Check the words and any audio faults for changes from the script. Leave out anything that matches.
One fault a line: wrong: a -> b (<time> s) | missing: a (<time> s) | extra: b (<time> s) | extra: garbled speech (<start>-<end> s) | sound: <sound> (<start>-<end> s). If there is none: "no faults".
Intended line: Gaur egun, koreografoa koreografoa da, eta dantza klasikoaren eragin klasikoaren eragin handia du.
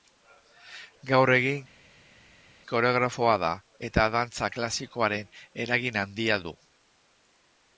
missing: koreografoa (3.4 s)
missing: klasikoaren eragin (6.0 s)